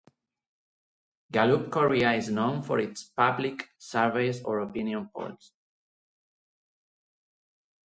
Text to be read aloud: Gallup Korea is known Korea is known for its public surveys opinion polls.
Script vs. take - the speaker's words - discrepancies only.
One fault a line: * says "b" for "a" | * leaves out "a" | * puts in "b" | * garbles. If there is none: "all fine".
* leaves out "Korea is known"
* puts in "or"